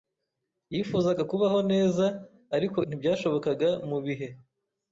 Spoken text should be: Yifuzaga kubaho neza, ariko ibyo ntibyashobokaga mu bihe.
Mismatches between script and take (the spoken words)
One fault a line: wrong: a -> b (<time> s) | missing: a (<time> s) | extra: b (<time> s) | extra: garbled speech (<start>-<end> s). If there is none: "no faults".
missing: ibyo (2.8 s)